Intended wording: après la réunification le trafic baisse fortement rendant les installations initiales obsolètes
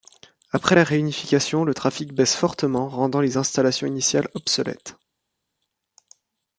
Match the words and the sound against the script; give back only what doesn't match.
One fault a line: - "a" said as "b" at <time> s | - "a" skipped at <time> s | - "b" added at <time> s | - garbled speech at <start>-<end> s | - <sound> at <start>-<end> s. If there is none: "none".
none